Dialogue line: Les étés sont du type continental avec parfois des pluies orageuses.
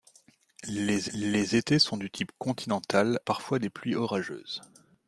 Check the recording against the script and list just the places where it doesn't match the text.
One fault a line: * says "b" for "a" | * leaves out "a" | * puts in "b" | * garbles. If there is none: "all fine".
* puts in "les"
* leaves out "avec"